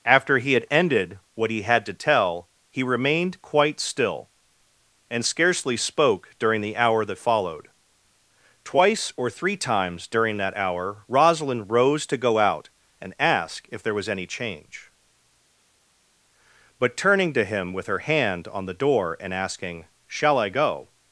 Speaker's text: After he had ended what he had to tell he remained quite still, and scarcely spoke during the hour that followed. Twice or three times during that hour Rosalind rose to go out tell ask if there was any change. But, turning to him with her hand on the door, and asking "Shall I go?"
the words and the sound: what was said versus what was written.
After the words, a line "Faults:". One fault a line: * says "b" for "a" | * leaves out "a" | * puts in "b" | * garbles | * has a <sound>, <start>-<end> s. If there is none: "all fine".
After he had ended what he had to tell he remained quite still, and scarcely spoke during the hour that followed. Twice or three times during that hour Rosalind rose to go out and ask if there was any change. But, turning to him with her hand on the door, and asking "Shall I go?"
Faults:
* says "and" for "tell"